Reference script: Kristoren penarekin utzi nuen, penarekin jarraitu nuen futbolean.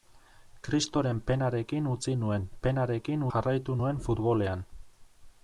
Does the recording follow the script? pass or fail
pass